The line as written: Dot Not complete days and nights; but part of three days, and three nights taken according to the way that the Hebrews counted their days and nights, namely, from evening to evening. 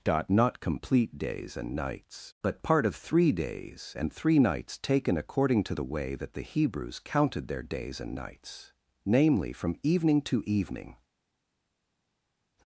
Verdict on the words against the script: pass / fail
pass